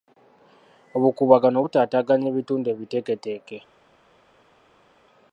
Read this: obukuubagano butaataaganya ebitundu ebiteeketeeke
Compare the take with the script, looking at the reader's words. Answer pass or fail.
pass